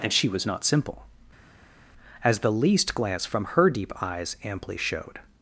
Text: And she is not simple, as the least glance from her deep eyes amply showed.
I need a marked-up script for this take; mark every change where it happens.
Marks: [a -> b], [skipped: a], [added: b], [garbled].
And she [is -> was] not simple, as the least glance from her deep eyes amply showed.